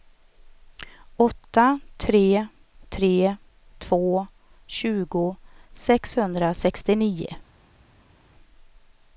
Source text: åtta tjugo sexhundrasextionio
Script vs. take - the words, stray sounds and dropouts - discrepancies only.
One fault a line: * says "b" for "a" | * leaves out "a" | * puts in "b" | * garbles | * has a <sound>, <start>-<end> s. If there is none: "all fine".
* puts in "tre tre två"